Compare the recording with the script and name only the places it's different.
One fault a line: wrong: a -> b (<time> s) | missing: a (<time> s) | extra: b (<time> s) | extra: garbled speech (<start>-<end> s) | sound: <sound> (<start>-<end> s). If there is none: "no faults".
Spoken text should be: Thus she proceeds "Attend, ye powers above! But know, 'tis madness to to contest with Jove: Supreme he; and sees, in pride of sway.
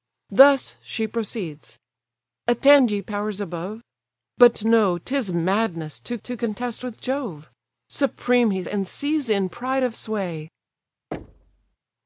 sound: thud (11.1-11.8 s)